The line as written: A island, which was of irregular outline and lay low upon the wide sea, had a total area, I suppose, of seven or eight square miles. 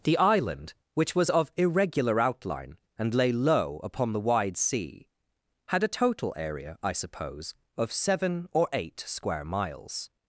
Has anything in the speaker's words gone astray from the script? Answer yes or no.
yes